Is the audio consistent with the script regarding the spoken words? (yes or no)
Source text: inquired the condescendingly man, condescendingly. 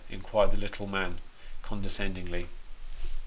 no